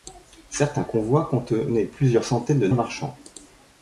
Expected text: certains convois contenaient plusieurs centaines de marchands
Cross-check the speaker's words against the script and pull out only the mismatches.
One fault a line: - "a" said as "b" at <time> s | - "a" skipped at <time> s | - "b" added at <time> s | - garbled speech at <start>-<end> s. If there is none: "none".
none